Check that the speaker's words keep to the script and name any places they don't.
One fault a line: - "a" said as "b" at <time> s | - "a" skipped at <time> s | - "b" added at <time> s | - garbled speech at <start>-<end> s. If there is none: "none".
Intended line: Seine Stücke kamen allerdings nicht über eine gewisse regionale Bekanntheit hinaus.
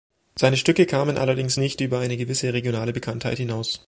none